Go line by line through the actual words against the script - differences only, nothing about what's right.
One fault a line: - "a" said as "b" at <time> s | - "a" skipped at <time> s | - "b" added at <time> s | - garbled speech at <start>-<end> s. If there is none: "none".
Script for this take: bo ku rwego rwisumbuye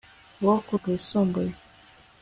- "rwego" skipped at 0.7 s